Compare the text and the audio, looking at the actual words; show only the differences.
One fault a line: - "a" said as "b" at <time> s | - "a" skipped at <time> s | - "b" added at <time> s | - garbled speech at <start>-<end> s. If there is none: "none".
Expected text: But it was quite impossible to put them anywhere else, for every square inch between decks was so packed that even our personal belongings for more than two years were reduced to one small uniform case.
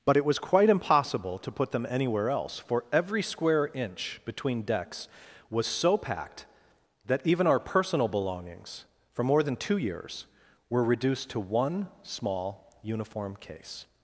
none